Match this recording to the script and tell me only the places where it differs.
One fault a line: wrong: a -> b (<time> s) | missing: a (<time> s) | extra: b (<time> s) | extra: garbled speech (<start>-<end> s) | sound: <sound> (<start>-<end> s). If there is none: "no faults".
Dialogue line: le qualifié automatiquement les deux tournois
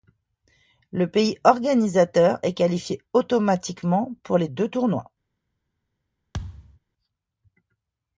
extra: pays organisateur est (1.1 s)
extra: pour (4.2 s)
sound: thud (6.3-6.8 s)